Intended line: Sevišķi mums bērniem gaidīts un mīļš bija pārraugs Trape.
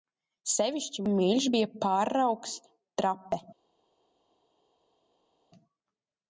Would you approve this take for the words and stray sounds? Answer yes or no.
no